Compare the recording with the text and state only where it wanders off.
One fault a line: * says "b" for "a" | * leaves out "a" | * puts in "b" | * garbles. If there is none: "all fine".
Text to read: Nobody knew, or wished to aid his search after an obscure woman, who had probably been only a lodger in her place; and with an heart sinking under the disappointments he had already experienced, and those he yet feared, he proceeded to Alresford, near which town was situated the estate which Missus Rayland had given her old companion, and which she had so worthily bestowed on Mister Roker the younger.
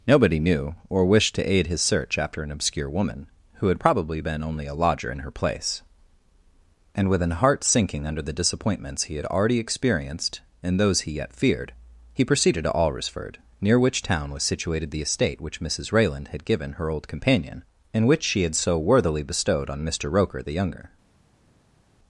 all fine